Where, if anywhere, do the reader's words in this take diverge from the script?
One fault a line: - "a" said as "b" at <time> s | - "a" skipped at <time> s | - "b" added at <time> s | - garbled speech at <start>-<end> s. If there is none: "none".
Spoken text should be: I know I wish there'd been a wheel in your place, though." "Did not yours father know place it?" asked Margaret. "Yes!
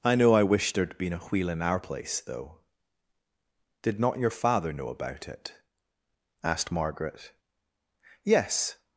- "your" said as "our" at 1.6 s
- "yours" said as "your" at 4.2 s
- "place" said as "about" at 4.9 s